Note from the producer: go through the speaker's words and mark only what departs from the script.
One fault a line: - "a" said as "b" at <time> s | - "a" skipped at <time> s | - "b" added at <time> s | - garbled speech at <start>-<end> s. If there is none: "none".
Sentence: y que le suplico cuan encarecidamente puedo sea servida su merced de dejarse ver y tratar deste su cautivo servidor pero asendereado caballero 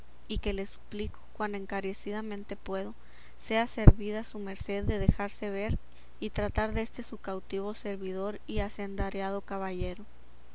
- "pero" said as "y" at 8.5 s